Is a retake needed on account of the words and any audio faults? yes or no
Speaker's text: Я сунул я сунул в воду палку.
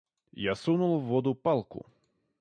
yes